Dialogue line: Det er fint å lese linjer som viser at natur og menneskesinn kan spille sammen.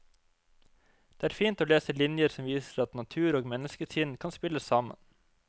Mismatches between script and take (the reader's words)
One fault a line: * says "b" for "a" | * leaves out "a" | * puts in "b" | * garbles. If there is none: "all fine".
all fine